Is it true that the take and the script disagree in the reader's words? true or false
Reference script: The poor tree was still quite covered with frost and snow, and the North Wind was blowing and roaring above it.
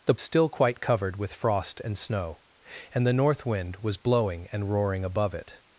true